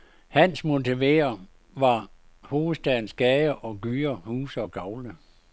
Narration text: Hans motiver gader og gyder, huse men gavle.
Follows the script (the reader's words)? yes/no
no